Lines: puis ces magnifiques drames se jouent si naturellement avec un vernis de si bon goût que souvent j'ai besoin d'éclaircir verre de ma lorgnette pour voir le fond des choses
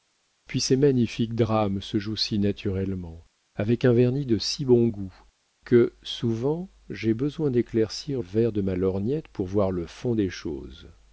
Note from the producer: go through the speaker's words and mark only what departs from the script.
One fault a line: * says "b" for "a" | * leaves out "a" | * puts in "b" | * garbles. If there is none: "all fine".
all fine